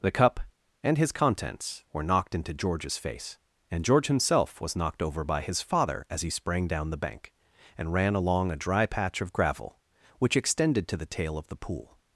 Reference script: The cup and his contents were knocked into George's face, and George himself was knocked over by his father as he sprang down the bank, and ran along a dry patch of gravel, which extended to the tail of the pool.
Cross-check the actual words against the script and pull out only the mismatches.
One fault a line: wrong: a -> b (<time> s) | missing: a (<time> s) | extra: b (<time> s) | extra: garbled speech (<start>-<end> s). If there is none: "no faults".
no faults